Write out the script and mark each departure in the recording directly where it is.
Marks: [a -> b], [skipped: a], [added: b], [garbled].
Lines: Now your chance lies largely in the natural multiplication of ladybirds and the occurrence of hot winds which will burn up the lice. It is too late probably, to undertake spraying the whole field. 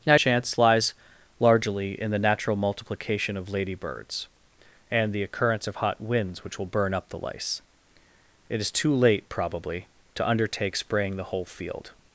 Now [skipped: your] chance lies largely in the natural multiplication of ladybirds and the occurrence of hot winds which will burn up the lice. It is too late probably, to undertake spraying the whole field.